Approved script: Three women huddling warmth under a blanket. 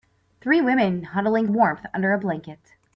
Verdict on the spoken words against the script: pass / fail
pass